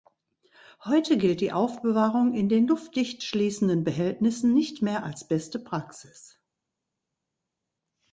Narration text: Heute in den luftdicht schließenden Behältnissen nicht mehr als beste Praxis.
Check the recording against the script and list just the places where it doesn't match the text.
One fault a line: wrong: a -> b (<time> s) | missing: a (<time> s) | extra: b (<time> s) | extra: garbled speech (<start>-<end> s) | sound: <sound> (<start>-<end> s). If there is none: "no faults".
extra: gilt die Aufbewahrung (1.2 s)